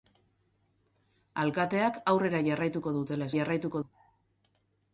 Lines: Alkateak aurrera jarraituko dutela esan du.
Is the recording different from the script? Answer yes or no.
yes